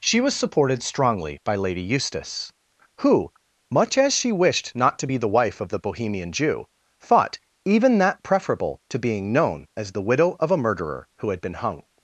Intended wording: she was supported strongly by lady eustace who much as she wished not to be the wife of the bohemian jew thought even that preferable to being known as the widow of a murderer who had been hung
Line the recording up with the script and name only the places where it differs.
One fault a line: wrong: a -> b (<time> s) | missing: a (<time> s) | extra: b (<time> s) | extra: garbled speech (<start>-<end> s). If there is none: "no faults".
no faults